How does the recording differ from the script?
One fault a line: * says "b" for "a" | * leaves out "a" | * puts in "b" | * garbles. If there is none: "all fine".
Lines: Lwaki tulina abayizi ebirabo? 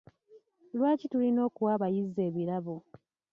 * puts in "okuwa"